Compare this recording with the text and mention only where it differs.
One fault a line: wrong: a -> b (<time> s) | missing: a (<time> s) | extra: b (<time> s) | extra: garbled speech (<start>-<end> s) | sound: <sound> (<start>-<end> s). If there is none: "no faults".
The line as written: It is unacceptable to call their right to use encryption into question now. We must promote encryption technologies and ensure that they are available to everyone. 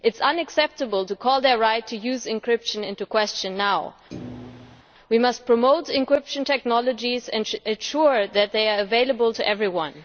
sound: thud (4.1-4.8 s)